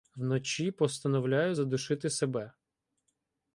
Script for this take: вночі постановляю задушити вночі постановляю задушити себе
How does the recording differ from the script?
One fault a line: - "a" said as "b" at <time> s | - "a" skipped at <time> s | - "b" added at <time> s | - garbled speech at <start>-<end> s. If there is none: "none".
- "вночі постановляю задушити" skipped at 2.1 s